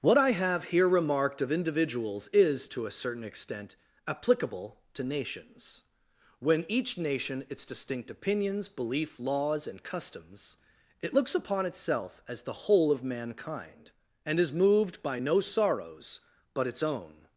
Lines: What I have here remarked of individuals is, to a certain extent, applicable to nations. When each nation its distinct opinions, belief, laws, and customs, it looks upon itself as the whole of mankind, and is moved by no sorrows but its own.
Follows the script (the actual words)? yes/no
yes